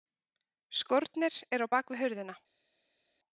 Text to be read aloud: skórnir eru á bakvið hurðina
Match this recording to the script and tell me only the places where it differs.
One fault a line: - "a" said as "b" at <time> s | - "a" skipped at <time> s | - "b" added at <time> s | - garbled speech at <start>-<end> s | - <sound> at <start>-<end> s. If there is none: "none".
none